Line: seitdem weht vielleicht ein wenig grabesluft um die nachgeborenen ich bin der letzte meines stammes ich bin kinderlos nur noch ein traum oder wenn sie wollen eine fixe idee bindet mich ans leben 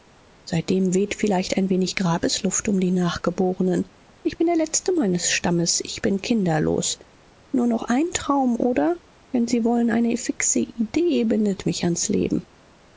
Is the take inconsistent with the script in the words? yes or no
no